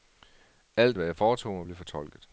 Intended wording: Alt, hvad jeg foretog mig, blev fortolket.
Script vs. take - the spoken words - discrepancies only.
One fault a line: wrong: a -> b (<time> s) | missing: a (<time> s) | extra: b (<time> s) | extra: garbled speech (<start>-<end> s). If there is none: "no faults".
no faults